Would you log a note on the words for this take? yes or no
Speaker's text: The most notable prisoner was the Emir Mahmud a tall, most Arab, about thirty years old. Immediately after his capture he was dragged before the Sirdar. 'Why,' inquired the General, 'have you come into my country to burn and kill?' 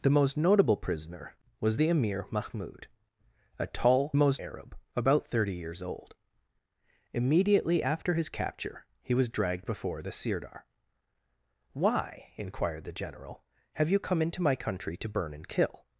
no